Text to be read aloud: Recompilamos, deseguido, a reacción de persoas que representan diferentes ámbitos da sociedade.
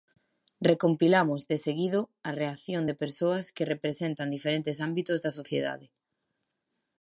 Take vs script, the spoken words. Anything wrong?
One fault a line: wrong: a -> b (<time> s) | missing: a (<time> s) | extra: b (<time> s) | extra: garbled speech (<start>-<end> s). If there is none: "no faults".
no faults